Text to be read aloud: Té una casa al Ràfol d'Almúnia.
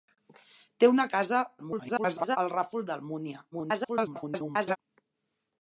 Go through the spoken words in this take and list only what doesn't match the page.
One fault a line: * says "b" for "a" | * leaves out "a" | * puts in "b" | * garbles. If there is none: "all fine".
* garbles
* garbles